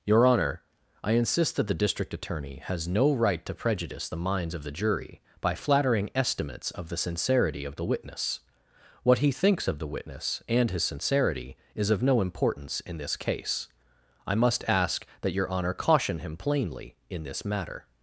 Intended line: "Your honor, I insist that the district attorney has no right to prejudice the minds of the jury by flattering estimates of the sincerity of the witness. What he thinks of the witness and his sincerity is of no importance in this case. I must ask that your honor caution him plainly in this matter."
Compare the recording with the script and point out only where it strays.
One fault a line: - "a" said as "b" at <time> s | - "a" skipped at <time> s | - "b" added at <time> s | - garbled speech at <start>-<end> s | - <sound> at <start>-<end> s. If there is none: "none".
none